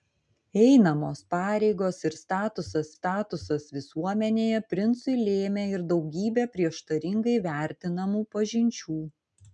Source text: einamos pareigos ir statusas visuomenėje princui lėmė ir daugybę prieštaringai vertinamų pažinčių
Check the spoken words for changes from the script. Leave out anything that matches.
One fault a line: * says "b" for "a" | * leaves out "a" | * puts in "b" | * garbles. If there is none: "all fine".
* puts in "statusas"